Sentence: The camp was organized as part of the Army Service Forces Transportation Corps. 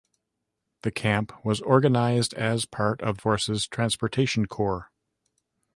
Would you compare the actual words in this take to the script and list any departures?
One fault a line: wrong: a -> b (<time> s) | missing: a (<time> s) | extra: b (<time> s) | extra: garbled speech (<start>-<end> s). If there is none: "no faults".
missing: the Army Service (3.2 s)